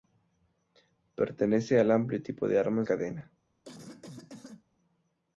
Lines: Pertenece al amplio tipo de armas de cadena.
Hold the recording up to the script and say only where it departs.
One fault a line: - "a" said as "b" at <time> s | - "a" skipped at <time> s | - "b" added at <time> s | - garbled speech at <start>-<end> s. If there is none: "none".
- "de" skipped at 2.9 s